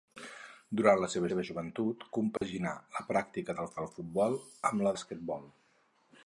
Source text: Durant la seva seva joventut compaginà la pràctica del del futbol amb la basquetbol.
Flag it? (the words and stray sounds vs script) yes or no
yes